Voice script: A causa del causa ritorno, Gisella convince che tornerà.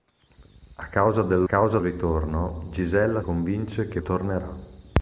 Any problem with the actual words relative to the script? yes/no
no